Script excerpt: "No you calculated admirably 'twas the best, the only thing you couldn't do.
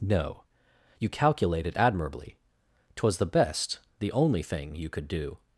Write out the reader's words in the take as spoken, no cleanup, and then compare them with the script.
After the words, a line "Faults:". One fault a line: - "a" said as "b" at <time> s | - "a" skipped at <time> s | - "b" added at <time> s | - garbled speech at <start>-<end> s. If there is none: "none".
"No you calculated admirably 'twas the best, the only thing you could do.
Faults:
- "couldn't" said as "could" at 4.9 s